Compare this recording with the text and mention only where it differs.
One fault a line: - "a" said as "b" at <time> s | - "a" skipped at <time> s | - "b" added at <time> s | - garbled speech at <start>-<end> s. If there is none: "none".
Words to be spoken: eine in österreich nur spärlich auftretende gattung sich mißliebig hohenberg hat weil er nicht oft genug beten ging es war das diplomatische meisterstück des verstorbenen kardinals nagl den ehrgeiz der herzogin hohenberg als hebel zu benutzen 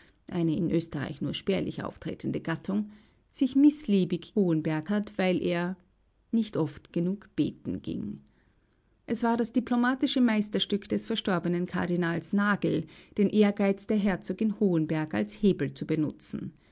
none